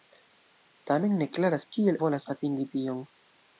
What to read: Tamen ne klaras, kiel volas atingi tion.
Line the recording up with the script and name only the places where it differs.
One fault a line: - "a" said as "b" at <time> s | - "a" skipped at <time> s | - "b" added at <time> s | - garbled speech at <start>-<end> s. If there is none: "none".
none